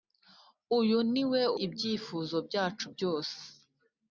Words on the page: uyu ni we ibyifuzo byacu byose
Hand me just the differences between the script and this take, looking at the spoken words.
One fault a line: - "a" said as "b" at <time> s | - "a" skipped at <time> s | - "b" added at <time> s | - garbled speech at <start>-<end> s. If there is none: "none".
none